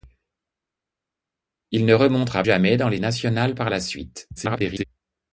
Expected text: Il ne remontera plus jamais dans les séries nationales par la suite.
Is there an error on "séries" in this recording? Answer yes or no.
yes